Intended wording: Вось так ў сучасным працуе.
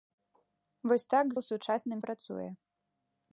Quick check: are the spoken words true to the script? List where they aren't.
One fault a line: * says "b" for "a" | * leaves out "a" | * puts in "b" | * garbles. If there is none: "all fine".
all fine